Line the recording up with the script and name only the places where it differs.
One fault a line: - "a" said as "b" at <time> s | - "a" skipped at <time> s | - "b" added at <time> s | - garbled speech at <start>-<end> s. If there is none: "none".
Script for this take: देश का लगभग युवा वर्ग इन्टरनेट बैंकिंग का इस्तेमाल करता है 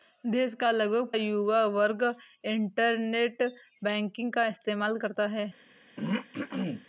none